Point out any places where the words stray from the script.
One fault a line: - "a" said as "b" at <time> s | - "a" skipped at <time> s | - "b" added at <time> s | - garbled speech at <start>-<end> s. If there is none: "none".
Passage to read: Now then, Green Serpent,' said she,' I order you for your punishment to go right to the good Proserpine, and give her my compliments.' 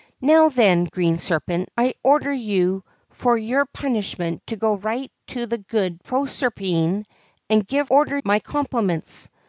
- "said she" skipped at 1.7 s
- "her" said as "order" at 7.9 s